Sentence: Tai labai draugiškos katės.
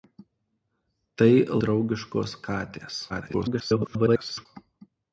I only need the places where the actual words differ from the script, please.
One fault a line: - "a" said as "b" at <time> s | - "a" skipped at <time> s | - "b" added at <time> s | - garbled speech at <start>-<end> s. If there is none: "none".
- "labai" skipped at 1.3 s
- garbled speech at 3.1-4.5 s